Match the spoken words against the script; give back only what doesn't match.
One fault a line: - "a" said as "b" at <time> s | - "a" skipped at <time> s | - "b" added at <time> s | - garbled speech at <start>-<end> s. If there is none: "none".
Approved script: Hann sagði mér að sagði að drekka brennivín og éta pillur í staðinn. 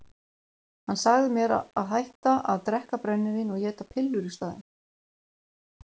- "sagði" said as "hætta" at 1.9 s